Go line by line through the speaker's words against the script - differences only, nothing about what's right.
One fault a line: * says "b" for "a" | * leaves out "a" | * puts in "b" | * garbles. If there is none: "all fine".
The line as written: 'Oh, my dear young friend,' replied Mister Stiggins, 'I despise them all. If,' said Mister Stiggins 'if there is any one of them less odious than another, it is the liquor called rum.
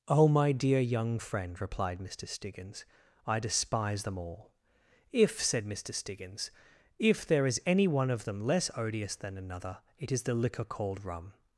all fine